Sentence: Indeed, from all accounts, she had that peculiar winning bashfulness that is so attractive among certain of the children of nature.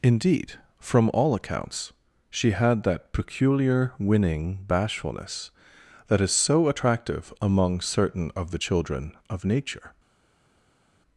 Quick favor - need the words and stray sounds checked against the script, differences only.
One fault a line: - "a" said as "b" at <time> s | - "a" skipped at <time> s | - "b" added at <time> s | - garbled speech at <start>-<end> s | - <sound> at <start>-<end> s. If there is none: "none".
none